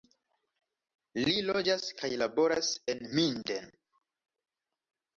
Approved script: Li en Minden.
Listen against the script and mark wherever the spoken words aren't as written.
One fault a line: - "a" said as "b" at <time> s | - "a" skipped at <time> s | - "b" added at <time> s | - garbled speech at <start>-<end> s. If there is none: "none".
- "loĝas kaj laboras" added at 1.5 s